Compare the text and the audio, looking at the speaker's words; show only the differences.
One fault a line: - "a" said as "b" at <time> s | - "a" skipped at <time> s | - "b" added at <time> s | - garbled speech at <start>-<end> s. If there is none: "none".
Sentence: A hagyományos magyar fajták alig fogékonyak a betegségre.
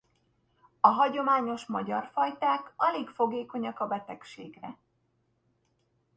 none